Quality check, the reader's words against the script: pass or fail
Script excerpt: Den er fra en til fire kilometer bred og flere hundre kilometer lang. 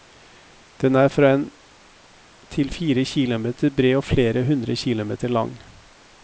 pass